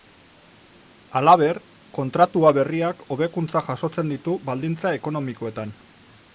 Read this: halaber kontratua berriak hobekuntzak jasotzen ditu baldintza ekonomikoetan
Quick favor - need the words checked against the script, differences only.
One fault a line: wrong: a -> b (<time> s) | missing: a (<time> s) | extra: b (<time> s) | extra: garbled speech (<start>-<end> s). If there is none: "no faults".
no faults